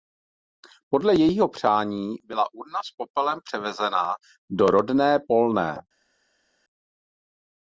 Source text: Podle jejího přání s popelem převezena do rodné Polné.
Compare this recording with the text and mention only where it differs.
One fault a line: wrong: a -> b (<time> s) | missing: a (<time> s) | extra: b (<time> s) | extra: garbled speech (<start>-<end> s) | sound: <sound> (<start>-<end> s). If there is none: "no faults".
extra: byla urna (2.2 s)